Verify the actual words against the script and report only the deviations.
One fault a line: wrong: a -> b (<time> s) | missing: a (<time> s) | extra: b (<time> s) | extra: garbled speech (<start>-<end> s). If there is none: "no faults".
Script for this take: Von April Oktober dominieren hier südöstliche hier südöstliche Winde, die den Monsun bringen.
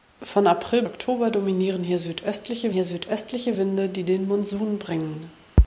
no faults